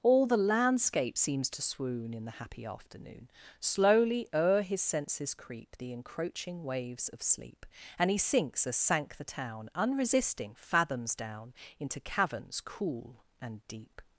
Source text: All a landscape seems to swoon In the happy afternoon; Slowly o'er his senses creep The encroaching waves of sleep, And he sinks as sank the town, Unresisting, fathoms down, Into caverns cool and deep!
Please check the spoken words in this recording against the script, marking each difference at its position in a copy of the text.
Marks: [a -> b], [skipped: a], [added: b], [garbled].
All [a -> the] landscape seems to swoon In the happy afternoon; Slowly o'er his senses creep The encroaching waves of sleep, And he sinks as sank the town, Unresisting, fathoms down, Into caverns cool and deep!